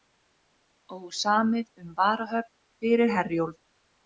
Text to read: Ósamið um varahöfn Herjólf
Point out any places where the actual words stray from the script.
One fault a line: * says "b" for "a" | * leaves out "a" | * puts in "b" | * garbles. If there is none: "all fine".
* puts in "fyrir"